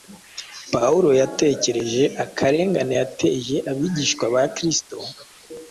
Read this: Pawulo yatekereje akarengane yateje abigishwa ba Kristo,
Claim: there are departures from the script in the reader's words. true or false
false